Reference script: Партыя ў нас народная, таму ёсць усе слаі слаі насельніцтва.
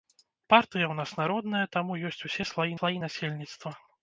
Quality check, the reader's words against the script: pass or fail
pass